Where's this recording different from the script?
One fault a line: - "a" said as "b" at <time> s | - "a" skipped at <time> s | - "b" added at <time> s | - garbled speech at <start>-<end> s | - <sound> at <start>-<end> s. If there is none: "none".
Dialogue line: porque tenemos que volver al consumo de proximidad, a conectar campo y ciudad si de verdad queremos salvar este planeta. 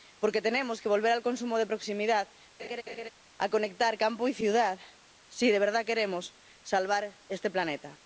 - laugh at 2.6-3.1 s